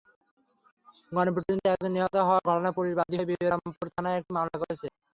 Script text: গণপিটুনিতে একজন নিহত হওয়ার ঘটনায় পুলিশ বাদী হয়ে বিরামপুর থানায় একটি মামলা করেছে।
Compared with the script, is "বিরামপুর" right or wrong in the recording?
right